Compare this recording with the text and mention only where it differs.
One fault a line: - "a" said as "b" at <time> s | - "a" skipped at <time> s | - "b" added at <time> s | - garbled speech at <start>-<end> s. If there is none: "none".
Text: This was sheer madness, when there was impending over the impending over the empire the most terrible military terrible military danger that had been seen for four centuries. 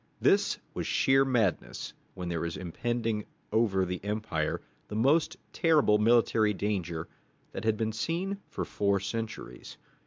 - "impending over the" skipped at 4.0 s
- "terrible military" skipped at 6.5 s